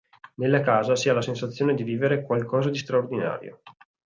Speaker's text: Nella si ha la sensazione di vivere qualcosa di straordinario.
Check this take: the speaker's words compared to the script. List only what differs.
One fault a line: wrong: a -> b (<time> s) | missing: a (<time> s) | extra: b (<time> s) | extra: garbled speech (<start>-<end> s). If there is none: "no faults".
extra: casa (0.6 s)